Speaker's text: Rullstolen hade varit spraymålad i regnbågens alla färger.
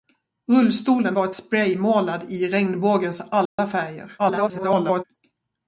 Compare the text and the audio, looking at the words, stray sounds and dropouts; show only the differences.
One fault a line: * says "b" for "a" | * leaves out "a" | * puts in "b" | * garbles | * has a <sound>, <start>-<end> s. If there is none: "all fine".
* leaves out "hade"
* has a dropout, 3.5-3.6 s
* garbles